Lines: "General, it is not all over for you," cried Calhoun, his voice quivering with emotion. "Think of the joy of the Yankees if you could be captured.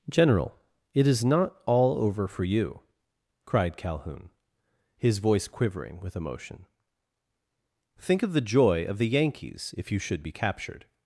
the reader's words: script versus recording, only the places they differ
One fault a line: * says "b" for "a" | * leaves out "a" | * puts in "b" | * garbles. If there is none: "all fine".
* says "should" for "could"